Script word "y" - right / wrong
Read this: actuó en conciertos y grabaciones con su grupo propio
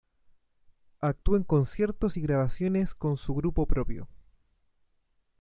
right